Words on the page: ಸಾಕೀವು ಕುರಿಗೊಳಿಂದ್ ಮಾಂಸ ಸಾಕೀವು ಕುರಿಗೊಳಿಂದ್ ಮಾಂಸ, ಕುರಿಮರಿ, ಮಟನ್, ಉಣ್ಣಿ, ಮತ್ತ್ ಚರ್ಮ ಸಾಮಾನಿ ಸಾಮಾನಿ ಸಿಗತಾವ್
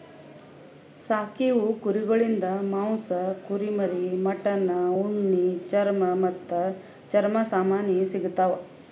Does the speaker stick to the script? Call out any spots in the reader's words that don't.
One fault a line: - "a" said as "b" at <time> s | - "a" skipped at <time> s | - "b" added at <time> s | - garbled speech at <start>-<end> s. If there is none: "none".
- "ಸಾಕೀವು ಕುರಿಗೊಳಿಂದ್ ಮಾಂಸ" skipped at 3.1 s
- "ಚರ್ಮ" added at 5.7 s
- "ಸಾಮಾನಿ" skipped at 8.0 s